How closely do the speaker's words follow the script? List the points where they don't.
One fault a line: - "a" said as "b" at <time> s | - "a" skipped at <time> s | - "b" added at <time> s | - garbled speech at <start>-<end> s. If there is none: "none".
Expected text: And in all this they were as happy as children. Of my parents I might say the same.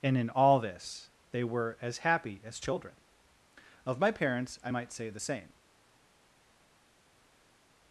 none